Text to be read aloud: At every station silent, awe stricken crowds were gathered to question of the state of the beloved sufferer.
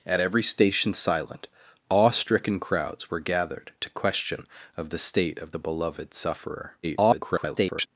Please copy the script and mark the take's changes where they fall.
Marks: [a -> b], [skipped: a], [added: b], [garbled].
At every station silent, awe stricken crowds were gathered to question of the state of the beloved sufferer. [garbled]